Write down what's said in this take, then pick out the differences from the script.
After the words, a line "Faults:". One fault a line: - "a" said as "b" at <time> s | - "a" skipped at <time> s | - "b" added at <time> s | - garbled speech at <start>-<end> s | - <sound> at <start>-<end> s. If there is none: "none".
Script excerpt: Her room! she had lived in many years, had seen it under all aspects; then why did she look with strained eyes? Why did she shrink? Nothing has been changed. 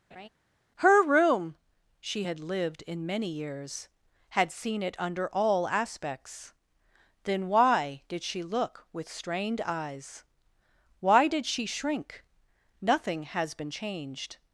Her room! she had lived in many years, had seen it under all aspects; then why did she look with strained eyes? Why did she shrink? Nothing has been changed.
Faults:
- laugh at 0.1-0.3 s